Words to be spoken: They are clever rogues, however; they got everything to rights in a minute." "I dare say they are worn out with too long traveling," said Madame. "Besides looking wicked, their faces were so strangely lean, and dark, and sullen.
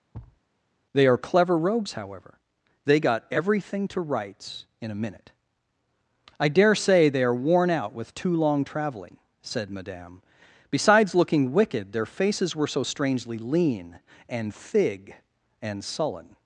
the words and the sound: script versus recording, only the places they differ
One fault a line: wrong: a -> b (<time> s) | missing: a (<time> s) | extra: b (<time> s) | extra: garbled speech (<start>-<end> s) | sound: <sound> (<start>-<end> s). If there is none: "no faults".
sound: thud (0.1-0.4 s)
wrong: dark -> thig (14.5 s)